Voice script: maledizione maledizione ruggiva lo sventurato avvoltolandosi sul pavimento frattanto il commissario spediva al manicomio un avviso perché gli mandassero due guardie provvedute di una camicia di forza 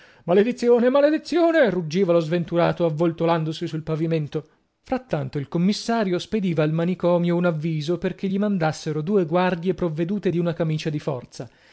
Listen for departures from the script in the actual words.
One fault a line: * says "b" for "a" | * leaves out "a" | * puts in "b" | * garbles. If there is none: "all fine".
all fine